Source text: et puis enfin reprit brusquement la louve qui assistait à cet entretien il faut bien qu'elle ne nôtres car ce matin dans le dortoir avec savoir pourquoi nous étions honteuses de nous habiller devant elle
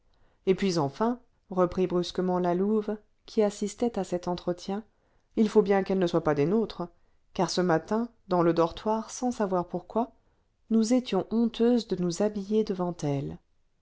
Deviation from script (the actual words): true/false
true